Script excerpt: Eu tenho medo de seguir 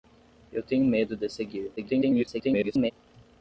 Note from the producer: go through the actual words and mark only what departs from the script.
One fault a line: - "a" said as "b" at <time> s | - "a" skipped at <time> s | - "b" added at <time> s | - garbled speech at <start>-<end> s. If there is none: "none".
- garbled speech at 1.8-2.9 s